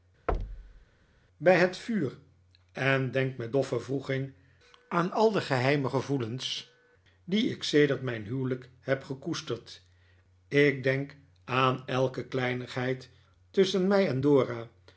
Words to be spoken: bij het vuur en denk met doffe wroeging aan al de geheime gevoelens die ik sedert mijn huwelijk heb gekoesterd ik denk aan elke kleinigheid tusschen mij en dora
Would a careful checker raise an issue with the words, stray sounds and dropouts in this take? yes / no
yes